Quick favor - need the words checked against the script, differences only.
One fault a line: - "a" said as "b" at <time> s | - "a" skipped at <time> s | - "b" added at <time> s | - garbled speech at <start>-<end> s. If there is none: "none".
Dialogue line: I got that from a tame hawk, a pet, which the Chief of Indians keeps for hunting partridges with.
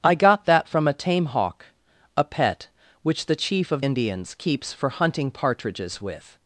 none